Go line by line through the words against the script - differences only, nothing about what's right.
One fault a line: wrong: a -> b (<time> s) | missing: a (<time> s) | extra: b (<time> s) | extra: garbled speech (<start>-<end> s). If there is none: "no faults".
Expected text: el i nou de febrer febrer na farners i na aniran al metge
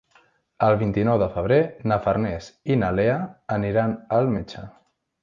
extra: vint (0.8 s)
missing: febrer (1.6 s)
extra: lea (3.0 s)